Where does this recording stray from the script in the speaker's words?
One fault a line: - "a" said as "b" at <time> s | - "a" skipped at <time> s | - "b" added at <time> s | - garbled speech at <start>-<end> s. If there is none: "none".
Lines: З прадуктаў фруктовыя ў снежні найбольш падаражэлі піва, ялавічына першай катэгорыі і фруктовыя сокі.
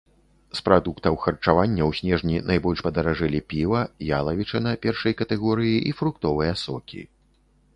- "фруктовыя" said as "харчавання" at 1.2 s